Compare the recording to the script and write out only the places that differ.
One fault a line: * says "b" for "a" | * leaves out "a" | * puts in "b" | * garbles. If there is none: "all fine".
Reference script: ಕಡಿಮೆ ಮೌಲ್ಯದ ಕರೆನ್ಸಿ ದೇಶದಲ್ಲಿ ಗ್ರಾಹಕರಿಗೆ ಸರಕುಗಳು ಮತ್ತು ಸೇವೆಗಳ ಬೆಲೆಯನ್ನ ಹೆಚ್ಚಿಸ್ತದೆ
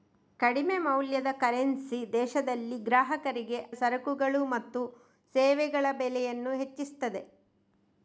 all fine